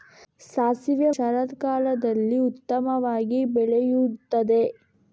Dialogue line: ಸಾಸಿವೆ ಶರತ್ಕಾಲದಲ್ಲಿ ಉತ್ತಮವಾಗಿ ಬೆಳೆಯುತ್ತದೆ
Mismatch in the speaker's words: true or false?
false